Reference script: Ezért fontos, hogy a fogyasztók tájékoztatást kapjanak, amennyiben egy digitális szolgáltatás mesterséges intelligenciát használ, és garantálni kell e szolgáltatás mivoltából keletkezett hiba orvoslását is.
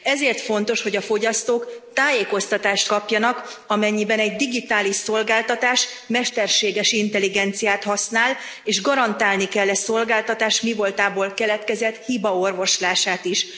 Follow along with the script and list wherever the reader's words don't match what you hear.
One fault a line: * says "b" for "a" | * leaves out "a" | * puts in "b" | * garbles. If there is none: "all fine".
all fine